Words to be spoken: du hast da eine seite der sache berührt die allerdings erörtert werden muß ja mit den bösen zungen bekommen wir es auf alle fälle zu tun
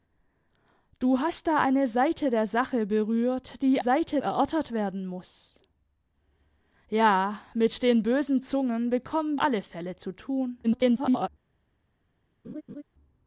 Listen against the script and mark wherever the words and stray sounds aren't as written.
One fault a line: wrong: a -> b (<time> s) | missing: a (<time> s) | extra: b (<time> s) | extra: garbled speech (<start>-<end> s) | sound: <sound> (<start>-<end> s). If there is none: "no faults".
wrong: allerdings -> seite (3.8 s)
missing: wir es auf (9.4 s)
extra: garbled speech (10.6-11.3 s)
sound: laugh (12.4-12.8 s)